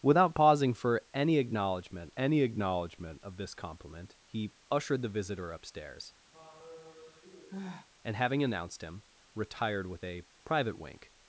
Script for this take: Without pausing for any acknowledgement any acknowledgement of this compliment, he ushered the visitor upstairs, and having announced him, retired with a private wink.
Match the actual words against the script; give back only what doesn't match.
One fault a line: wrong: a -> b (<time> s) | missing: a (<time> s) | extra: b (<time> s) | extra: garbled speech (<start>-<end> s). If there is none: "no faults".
no faults